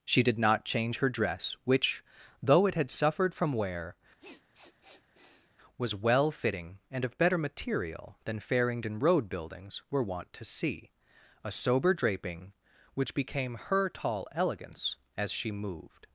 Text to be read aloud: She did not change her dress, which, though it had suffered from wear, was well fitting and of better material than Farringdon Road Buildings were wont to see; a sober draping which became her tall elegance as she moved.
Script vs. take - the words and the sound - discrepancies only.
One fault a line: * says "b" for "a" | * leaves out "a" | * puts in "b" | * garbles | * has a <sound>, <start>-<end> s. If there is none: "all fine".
* has a sniff, 4.2-5.5 s